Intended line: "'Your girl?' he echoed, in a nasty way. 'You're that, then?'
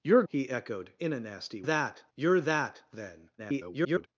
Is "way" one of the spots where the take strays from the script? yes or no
yes